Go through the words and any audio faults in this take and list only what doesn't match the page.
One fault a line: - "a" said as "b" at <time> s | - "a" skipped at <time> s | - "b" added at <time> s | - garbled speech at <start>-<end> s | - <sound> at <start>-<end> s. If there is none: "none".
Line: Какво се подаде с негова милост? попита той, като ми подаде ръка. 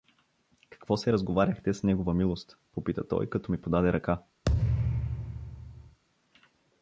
- "подаде" said as "разговаряхте" at 1.1 s
- thud at 4.5-6.0 s